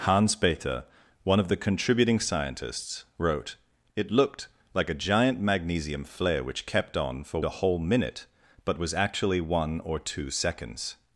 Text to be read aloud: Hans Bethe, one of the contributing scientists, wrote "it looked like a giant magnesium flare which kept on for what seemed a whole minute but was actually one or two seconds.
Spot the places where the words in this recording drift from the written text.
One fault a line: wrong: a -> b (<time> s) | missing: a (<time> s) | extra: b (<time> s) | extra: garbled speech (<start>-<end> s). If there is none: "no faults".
missing: what seemed (7.4 s)